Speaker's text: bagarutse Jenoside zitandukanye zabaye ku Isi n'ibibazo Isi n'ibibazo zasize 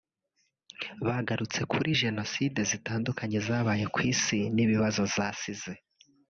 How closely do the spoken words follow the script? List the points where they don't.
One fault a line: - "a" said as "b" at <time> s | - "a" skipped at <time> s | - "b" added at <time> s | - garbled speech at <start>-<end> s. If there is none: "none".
- "kuri" added at 1.7 s
- "Isi n'ibibazo" skipped at 5.0 s